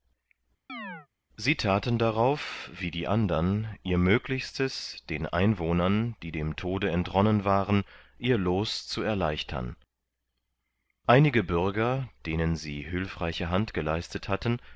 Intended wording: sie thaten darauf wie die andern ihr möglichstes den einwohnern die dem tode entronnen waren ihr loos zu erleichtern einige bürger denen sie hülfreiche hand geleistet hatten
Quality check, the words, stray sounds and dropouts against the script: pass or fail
fail